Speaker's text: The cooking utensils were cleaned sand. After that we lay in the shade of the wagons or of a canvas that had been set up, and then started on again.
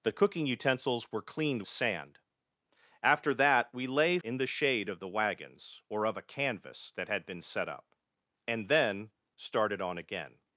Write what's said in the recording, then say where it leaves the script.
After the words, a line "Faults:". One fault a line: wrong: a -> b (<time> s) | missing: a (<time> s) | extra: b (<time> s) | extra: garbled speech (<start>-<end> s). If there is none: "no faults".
The cooking utensils were cleaned sand. After that we lay in the shade of the wagons or of a canvas that had been set up, and then started on again.
Faults:
no faults